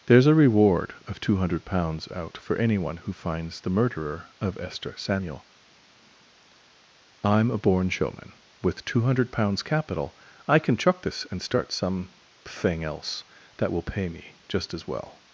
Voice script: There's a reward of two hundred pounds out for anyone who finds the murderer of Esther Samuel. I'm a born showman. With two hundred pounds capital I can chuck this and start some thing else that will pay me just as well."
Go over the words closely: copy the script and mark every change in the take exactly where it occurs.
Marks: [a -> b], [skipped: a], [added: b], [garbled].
There's a reward of two hundred pounds out for anyone who finds the murderer of Esther Samuel. I'm a born showman. With two hundred pounds capital I can chuck this and start some thing else that will pay me just as well."